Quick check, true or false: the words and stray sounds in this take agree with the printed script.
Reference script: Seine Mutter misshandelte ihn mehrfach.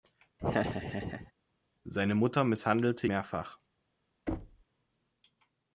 false